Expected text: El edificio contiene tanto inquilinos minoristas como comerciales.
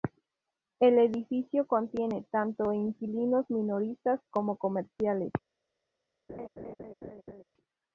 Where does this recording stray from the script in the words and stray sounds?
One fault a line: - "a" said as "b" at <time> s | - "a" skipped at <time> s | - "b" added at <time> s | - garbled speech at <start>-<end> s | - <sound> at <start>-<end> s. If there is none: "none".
- laugh at 6.3-7.4 s